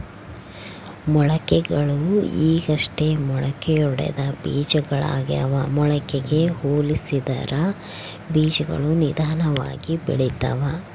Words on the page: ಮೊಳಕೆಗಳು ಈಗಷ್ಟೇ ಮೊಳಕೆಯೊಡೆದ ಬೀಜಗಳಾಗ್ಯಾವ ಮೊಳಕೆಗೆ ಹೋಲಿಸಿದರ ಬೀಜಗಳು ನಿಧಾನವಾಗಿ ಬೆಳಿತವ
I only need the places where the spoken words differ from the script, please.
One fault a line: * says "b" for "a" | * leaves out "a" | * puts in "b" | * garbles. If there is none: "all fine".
all fine